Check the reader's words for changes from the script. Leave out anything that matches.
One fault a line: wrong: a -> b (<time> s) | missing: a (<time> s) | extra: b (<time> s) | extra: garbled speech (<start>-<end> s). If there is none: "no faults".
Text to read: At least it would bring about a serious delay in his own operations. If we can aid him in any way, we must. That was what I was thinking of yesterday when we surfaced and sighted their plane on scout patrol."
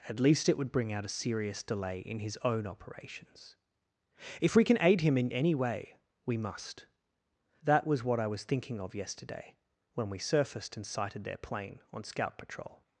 wrong: about -> out (0.9 s)